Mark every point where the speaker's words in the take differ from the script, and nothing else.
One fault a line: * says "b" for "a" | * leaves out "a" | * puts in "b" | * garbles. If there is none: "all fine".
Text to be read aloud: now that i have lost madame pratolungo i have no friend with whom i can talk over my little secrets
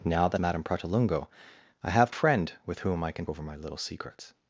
* leaves out "i have lost"
* leaves out "no"
* leaves out "talk"